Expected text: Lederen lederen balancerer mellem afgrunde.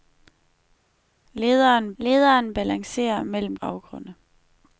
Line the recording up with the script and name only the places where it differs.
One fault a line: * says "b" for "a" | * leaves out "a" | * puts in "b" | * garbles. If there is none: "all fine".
all fine